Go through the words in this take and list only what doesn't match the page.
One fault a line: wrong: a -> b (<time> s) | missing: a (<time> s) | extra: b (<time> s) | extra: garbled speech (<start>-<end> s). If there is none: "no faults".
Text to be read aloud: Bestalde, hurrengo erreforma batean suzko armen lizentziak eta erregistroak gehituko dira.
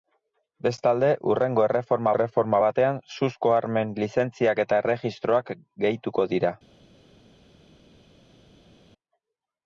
extra: erreforma (2.1 s)